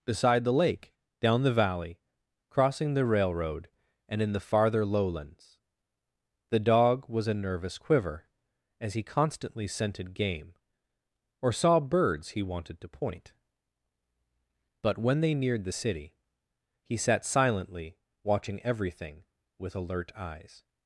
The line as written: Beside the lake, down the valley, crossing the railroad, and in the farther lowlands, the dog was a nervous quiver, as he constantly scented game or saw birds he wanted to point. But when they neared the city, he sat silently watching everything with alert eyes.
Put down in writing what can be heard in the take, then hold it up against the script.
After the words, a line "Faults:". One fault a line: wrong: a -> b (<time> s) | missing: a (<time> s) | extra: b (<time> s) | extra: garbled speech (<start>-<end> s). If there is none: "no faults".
Beside the lake, down the valley, crossing the railroad, and in the farther lowlands, the dog was a nervous quiver, as he constantly scented game or saw birds he wanted to point. But when they neared the city, he sat silently watching everything with alert eyes.
Faults:
no faults